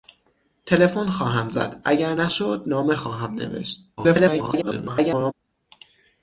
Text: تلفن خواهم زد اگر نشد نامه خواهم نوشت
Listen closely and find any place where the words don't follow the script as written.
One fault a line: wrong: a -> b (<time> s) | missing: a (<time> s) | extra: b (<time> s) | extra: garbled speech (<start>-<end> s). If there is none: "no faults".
extra: garbled speech (4.0-5.3 s)